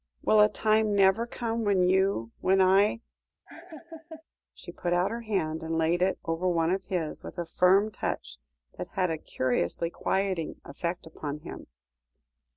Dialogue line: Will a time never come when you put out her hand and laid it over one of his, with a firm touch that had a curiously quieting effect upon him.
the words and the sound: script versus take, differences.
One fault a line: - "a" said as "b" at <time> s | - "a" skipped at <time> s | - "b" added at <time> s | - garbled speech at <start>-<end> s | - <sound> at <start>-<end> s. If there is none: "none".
- "when I She" added at 2.4 s
- laugh at 3.5-4.2 s